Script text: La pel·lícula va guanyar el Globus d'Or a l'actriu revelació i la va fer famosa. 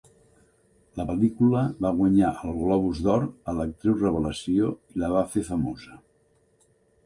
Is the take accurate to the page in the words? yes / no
yes